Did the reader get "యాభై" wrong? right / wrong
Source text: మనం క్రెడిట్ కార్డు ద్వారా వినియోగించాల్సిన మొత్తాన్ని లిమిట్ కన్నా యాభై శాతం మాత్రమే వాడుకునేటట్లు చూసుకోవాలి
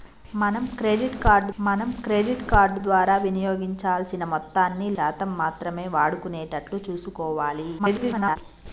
wrong